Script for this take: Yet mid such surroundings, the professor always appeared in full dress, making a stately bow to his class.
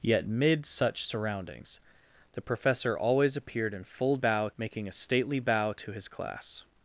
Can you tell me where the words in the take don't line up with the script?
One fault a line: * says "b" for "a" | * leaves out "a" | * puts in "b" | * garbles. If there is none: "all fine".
* says "bow" for "dress"